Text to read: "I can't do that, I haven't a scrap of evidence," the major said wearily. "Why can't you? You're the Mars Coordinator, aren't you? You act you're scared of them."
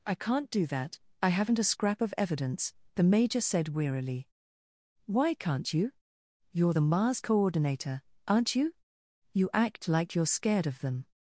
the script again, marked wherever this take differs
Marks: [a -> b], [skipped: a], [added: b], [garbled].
"I can't do that, I haven't a scrap of evidence," the major said wearily. "Why can't you? You're the Mars Coordinator, aren't you? You act [added: like] you're scared of them."